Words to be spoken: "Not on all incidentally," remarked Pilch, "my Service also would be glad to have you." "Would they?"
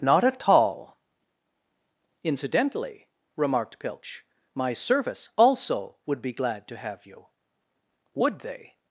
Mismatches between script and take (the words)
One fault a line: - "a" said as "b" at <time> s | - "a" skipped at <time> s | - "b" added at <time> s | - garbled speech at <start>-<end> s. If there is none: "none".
- "on" said as "at" at 0.2 s